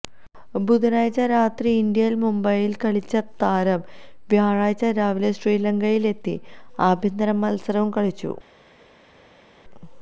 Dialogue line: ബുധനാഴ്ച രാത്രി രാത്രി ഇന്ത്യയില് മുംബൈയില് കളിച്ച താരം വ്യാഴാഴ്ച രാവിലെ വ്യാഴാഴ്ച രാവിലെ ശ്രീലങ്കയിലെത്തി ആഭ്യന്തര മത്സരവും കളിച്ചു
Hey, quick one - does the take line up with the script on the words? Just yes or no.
no